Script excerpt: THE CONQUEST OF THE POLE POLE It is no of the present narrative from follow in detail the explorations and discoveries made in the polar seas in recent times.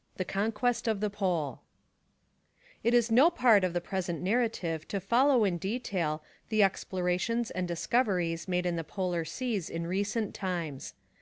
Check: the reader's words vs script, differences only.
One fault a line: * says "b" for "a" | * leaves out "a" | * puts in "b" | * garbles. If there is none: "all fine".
* leaves out "POLE"
* puts in "part"
* says "to" for "from"